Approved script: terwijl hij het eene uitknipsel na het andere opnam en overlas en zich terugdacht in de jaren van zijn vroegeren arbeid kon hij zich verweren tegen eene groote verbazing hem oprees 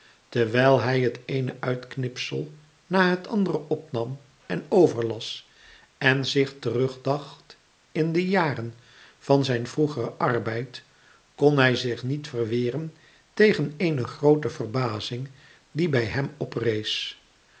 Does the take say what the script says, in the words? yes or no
no